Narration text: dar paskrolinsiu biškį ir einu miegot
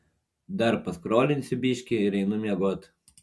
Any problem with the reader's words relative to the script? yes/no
no